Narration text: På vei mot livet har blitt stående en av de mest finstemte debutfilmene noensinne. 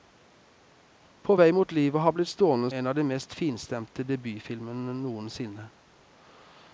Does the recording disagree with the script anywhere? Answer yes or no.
no